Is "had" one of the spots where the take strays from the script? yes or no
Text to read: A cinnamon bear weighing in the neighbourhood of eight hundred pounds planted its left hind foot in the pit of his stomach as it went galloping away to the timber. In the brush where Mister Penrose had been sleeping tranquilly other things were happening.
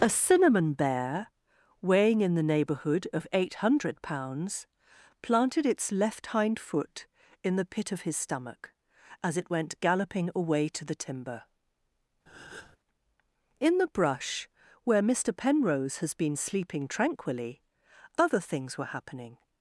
yes